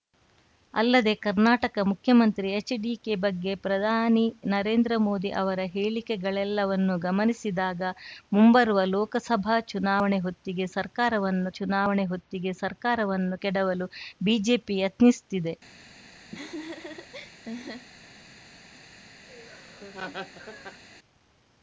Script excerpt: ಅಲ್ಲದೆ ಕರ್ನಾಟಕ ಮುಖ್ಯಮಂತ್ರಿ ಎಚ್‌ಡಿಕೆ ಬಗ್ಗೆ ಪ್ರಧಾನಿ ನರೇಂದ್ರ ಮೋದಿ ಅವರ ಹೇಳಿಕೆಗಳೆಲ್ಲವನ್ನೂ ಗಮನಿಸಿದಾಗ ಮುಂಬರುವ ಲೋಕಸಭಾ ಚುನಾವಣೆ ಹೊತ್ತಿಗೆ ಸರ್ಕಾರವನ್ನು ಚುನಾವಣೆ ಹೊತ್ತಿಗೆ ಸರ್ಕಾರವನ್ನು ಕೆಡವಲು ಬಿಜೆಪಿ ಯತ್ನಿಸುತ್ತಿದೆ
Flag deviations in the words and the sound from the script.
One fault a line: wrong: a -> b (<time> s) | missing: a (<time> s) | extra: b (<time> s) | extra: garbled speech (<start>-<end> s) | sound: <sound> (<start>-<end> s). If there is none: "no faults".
sound: laugh (16.3-17.9 s)
sound: laugh (19.3-20.8 s)